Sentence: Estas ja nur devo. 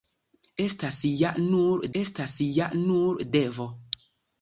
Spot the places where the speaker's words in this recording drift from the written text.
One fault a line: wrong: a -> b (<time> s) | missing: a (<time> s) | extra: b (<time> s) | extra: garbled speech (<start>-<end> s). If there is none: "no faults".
extra: estas ja nur (2.0 s)